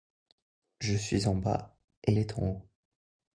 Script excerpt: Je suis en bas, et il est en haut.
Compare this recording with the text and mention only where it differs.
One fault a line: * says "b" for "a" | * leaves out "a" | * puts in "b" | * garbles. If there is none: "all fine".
* leaves out "il"